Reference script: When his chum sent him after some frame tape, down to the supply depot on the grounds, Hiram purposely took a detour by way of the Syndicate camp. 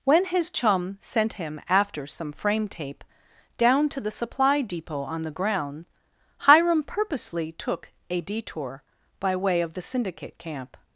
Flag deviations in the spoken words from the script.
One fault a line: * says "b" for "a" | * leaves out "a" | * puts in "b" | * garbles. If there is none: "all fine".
* says "ground" for "grounds"